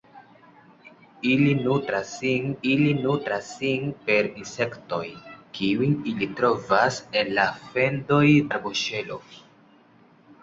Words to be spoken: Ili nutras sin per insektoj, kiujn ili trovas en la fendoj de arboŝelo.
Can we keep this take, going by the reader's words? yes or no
no